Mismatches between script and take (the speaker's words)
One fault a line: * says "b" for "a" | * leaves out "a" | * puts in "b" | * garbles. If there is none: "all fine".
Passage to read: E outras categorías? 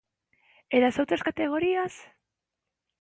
* puts in "das"